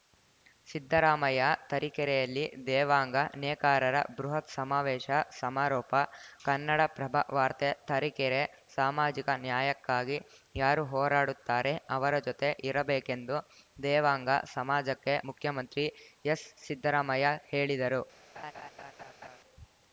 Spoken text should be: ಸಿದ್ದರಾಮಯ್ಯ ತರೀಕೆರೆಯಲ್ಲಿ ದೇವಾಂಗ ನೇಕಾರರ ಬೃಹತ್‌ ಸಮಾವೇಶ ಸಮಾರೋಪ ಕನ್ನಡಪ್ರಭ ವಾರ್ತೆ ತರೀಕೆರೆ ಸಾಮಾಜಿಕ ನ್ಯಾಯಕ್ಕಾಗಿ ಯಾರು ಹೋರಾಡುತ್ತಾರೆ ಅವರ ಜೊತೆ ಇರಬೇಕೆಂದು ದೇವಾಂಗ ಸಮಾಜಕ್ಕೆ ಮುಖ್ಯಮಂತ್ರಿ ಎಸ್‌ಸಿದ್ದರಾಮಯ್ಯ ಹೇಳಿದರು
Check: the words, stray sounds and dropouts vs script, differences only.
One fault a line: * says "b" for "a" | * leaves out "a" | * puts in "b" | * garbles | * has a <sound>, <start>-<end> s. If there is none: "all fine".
* has a laugh, 18.4-19.4 s